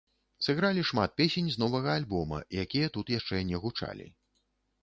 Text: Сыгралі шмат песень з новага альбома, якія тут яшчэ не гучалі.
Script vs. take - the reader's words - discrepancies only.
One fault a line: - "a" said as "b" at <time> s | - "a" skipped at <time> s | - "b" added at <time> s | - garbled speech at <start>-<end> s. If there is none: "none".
none